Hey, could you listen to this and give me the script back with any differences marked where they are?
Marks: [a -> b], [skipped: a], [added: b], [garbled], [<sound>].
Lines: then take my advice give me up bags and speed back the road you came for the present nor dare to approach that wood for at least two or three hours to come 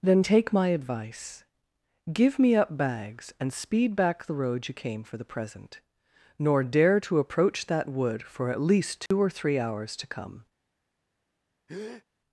then take my advice give me up bags and speed back the road you came for the present nor dare to approach that wood for at least two [dropout] or three hours to come [breath]